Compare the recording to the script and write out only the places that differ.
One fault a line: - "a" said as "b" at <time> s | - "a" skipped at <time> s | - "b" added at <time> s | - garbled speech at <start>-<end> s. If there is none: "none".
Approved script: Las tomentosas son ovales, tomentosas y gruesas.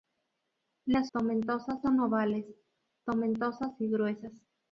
none